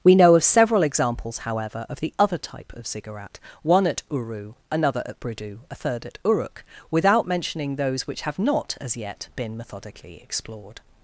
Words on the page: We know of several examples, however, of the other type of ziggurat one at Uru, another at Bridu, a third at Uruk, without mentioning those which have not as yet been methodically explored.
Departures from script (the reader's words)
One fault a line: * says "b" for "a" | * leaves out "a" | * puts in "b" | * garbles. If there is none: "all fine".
all fine